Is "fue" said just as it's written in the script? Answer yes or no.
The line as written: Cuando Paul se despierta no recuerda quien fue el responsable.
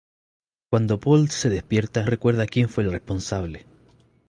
yes